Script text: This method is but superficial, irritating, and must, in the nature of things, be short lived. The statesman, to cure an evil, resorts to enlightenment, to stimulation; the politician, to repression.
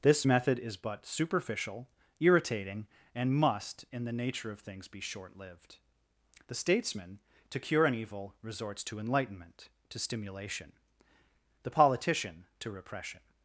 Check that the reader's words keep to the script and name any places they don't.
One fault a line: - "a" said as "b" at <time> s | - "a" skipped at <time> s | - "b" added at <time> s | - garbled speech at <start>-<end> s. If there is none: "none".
none